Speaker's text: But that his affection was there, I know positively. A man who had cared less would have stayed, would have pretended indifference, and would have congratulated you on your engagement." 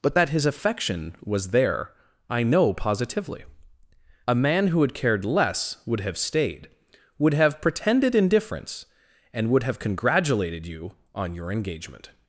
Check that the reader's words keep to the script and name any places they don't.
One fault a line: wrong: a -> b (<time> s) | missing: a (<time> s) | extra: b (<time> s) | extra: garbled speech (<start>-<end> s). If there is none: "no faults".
no faults